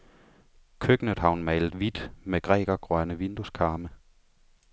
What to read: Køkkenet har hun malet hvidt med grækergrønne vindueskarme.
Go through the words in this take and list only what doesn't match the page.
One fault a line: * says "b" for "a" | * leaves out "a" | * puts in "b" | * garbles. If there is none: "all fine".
all fine